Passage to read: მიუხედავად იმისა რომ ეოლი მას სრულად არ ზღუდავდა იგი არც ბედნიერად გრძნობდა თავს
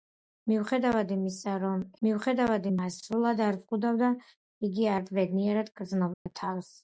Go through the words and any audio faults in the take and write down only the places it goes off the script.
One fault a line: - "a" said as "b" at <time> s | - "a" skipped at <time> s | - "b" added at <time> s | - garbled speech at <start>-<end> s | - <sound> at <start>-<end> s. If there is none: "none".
- "ეოლი" said as "მიუხედავად" at 2.1 s
- dropout at 6.1-6.3 s